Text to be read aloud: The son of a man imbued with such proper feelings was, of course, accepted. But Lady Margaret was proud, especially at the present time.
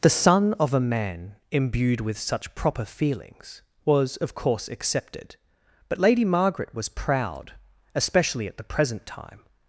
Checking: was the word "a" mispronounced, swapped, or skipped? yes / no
no